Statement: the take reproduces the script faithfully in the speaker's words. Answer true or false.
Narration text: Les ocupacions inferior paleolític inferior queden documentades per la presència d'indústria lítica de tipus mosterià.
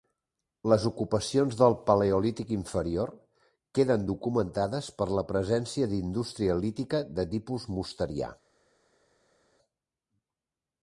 false